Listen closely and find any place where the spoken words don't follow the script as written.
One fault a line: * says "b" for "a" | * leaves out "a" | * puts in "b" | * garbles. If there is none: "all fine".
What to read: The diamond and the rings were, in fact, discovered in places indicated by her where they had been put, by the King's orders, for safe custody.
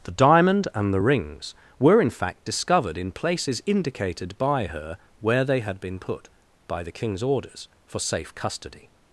all fine